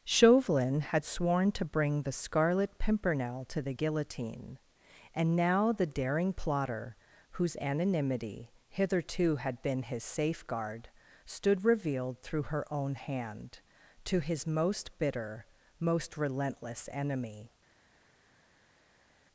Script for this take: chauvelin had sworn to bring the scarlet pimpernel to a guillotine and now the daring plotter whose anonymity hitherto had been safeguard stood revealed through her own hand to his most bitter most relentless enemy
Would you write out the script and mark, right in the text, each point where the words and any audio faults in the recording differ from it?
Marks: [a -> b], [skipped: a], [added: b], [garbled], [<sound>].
chauvelin had sworn to bring the scarlet pimpernel to [a -> the] guillotine and now the daring plotter whose anonymity hitherto had been [added: his] safeguard stood revealed through her own hand to his most bitter most relentless enemy